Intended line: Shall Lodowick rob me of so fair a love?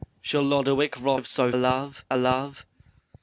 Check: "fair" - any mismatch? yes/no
yes